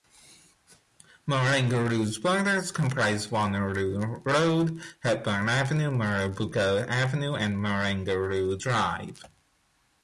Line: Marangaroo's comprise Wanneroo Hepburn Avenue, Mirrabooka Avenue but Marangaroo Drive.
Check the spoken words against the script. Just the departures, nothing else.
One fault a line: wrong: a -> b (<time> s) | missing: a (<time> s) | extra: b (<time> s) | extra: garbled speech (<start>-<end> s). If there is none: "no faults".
extra: borders (2.2 s)
extra: Road (4.2 s)
wrong: but -> and (7.3 s)